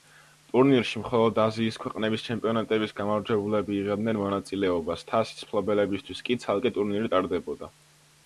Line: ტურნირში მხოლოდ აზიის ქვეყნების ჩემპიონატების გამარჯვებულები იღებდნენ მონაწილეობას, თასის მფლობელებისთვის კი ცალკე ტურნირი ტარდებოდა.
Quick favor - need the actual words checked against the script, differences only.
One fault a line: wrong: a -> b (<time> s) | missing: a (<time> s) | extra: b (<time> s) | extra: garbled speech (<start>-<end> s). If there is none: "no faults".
no faults